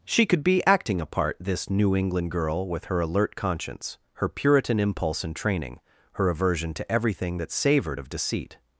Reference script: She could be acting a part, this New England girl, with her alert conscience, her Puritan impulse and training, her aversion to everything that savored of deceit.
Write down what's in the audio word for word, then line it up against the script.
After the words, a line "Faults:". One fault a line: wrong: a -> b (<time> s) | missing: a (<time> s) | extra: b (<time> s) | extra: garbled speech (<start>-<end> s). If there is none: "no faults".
She could be acting a part, this New England girl, with her alert conscience, her Puritan impulse and training, her aversion to everything that savored of deceit.
Faults:
no faults